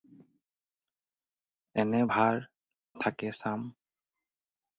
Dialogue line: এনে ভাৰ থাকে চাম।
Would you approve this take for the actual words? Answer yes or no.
yes